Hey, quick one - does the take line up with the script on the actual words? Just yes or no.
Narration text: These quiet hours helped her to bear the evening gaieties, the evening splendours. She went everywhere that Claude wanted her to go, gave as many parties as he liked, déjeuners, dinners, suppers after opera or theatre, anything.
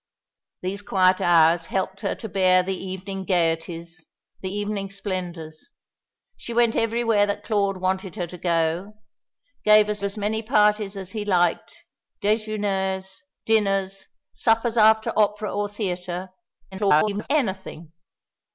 no